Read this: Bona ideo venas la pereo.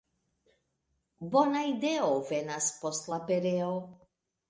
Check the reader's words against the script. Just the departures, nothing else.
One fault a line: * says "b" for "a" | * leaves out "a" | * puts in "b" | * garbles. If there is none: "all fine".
* puts in "post"